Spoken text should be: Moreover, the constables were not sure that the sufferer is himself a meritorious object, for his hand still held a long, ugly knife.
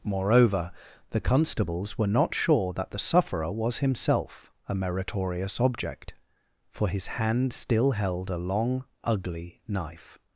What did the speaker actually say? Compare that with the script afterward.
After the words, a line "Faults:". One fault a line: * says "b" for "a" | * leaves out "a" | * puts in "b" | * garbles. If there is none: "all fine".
Moreover, the constables were not sure that the sufferer was himself a meritorious object, for his hand still held a long, ugly knife.
Faults:
* says "was" for "is"